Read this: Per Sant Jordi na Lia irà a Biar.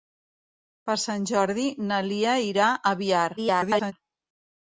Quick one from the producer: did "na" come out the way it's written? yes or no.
yes